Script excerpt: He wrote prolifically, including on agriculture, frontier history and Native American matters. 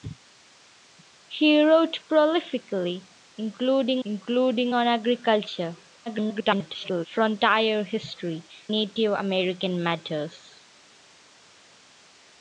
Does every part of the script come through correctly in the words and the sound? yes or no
no